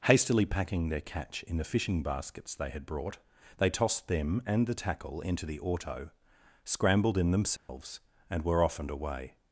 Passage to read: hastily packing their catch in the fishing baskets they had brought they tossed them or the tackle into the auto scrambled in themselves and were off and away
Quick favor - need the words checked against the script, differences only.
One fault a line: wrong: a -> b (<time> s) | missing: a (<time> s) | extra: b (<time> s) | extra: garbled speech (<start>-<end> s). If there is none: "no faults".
wrong: or -> and (4.5 s)